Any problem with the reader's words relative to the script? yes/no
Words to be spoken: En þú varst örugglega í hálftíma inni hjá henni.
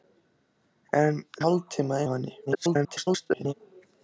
yes